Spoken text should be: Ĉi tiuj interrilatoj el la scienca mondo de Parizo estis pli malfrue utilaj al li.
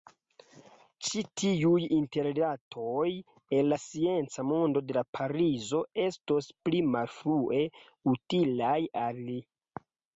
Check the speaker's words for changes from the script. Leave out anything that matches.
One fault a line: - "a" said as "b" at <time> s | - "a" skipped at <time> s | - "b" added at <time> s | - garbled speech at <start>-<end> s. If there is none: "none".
- "estis" said as "estos" at 6.1 s